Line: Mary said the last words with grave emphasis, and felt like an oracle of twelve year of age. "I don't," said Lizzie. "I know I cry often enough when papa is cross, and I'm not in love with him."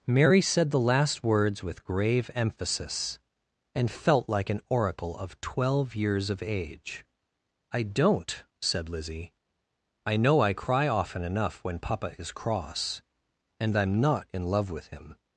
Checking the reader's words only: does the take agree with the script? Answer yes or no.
no